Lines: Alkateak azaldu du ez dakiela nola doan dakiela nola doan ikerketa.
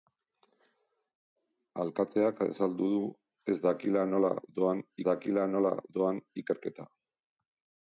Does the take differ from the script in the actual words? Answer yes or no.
no